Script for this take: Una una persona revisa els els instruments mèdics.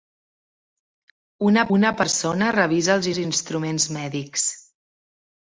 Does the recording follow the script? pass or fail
pass